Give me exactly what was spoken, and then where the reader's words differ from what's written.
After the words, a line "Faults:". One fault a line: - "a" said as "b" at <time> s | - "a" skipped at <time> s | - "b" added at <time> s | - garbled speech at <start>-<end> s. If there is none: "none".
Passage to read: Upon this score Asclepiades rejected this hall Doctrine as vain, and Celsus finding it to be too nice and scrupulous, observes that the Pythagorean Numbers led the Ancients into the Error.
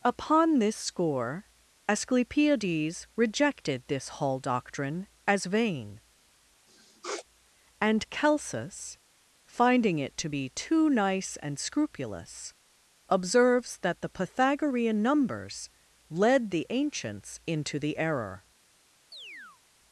Upon this score Asclepiades rejected this hall Doctrine as vain, and Celsus finding it to be too nice and scrupulous, observes that the Pythagorean Numbers led the Ancients into the Error.
Faults:
none